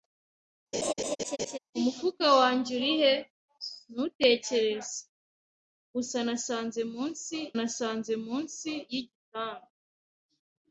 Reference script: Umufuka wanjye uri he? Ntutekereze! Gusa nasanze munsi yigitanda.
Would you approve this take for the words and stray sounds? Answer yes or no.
no